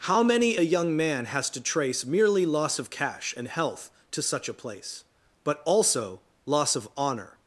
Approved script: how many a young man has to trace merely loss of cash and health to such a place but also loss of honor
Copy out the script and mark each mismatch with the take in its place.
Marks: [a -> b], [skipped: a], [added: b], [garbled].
how many a young man has to trace merely loss of cash and health to such a place but also loss of honor